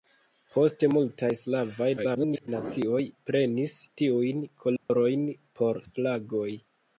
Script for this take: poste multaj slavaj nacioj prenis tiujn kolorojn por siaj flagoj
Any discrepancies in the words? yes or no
yes